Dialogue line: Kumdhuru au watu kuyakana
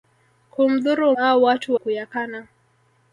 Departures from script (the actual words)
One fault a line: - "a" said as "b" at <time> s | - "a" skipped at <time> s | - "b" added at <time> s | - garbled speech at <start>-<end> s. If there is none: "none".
none